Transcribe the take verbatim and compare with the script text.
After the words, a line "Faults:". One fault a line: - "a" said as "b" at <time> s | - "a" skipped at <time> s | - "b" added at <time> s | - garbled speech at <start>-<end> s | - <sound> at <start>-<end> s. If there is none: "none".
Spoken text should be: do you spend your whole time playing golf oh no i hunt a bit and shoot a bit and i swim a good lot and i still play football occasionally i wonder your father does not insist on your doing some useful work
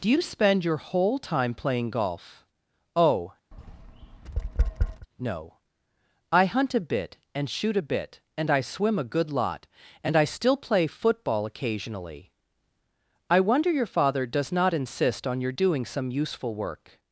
do you spend your whole time playing golf oh no i hunt a bit and shoot a bit and i swim a good lot and i still play football occasionally i wonder your father does not insist on your doing some useful work
Faults:
- tap at 3.5-5.1 s